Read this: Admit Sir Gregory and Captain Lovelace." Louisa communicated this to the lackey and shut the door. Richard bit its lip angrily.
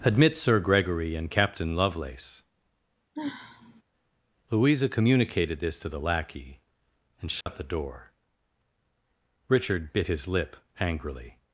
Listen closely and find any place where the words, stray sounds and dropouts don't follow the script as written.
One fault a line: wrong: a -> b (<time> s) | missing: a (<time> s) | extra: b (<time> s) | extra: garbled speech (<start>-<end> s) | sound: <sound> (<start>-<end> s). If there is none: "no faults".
sound: sigh (3.2-3.8 s)
sound: dropout (7.4-7.5 s)
wrong: its -> his (10.1 s)